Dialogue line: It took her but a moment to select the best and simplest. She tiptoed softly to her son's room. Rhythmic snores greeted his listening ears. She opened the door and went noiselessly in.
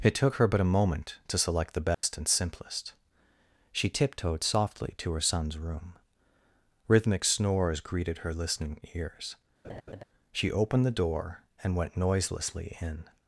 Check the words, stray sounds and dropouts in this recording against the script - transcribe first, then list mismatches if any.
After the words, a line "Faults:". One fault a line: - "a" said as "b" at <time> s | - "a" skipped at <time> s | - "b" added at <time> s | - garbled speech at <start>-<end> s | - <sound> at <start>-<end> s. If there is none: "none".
It took her but a moment to select the best and simplest. She tiptoed softly to her son's room. Rhythmic snores greeted her listening ears. She opened the door and went noiselessly in.
Faults:
- dropout at 1.9-2.0 s
- "his" said as "her" at 8.2 s
- laugh at 9.6-10.0 s